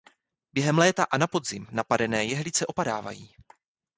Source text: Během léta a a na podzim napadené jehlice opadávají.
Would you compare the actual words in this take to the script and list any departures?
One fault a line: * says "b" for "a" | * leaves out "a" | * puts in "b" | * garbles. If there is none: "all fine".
* leaves out "a"